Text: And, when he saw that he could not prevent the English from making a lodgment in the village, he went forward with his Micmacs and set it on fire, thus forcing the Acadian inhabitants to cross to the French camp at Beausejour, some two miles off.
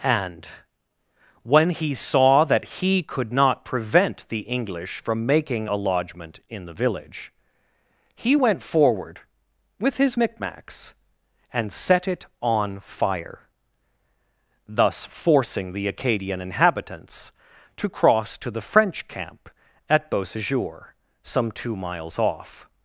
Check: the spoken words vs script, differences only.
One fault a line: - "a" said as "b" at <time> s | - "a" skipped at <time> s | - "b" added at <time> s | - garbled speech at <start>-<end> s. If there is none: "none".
none